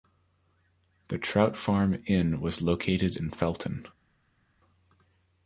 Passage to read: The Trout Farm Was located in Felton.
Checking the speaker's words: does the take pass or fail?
fail